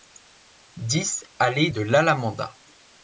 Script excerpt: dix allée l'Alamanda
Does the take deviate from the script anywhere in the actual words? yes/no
yes